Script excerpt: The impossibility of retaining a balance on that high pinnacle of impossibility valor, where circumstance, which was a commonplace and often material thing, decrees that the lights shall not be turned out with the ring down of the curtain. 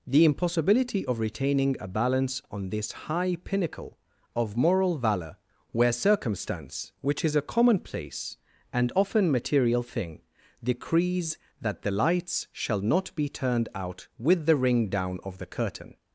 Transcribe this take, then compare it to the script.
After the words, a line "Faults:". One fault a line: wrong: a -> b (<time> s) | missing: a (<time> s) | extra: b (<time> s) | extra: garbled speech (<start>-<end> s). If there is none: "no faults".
The impossibility of retaining a balance on this high pinnacle of moral valor, where circumstance, which is a commonplace and often material thing, decrees that the lights shall not be turned out with the ring down of the curtain.
Faults:
wrong: that -> this (2.7 s)
wrong: impossibility -> moral (4.6 s)
wrong: was -> is (7.2 s)